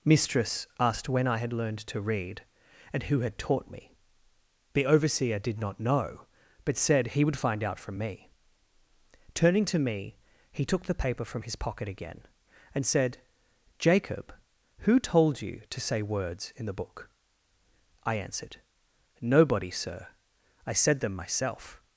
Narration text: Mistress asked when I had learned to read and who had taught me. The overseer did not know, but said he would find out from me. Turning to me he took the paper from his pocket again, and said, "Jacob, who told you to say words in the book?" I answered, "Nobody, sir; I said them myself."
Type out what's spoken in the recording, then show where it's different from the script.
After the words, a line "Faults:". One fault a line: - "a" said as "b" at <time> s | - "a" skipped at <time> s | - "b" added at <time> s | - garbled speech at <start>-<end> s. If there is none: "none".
Mistress asked when I had learned to read and who had taught me. The overseer did not know, but said he would find out from me. Turning to me he took the paper from his pocket again, and said, "Jacob, who told you to say words in the book?" I answered, "Nobody, sir; I said them myself."
Faults:
none